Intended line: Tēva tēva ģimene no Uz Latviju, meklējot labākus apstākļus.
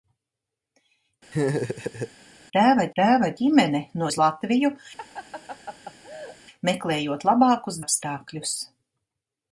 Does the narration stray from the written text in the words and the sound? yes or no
yes